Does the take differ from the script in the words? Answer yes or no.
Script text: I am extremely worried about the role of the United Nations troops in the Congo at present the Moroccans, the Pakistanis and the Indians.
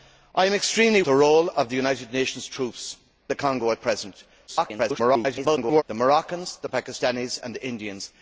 yes